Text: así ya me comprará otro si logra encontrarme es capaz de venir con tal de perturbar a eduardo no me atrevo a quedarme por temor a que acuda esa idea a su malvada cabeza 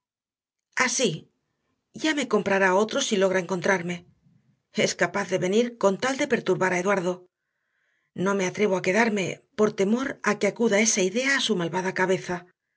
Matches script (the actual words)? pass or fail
pass